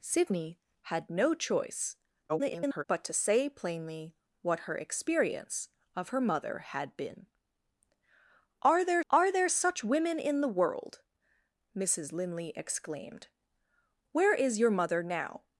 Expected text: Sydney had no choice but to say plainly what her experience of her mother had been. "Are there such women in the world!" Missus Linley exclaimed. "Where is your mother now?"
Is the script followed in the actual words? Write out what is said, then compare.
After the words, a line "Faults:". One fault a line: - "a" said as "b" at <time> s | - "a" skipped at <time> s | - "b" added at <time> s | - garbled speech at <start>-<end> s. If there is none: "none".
Sydney had no choice [garbled] but to say plainly what her experience of her mother had been. "Are there are there such women in the world!" Missus Linley exclaimed. "Where is your mother now?"
Faults:
- garbled speech at 2.3-2.8 s
- "are there" added at 9.1 s